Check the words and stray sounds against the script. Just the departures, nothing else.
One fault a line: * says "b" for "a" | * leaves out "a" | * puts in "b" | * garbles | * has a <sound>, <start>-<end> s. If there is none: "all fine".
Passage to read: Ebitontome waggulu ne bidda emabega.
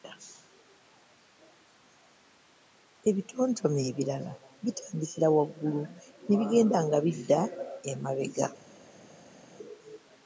* puts in "ebirala bitandikira"
* puts in "bigenda nga"